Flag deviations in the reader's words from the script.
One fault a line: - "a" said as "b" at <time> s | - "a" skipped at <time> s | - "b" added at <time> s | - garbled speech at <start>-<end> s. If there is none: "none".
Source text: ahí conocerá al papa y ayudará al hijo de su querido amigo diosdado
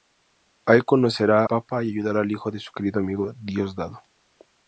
- "al" skipped at 1.4 s